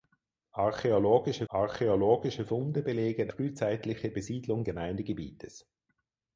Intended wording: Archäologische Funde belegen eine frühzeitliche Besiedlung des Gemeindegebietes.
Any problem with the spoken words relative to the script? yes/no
yes